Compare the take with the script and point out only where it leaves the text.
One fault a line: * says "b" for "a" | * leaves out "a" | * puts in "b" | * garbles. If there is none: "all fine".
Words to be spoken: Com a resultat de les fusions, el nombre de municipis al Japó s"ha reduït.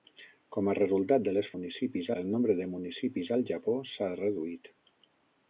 * says "municipis" for "fusions"